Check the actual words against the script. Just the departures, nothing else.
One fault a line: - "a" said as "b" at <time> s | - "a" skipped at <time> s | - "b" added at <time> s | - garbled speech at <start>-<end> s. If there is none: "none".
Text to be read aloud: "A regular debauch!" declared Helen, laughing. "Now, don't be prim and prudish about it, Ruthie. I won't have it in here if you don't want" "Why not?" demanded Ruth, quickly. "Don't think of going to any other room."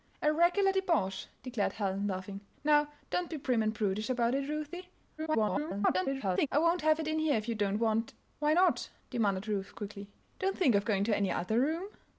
- garbled speech at 5.2-6.5 s